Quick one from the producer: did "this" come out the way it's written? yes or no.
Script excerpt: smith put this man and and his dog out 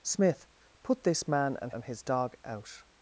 yes